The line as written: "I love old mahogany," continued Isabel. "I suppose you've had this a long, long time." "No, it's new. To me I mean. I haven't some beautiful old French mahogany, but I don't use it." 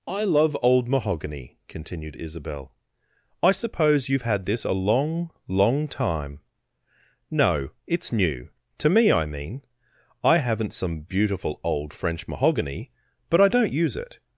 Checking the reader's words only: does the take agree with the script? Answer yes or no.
yes